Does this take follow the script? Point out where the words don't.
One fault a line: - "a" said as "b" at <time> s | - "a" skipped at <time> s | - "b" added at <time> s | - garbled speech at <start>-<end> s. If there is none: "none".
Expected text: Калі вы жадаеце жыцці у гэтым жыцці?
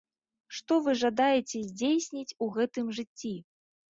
- "Калі" said as "Што" at 0.6 s
- "жыцці" said as "здзейсніць" at 1.7 s